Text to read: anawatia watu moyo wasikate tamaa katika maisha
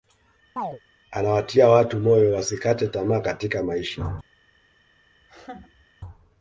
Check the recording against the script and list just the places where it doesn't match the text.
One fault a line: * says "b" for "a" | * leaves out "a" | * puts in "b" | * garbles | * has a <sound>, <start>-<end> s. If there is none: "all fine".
* has a chirp, 0.6-0.8 s
* has a laugh, 5.2-5.9 s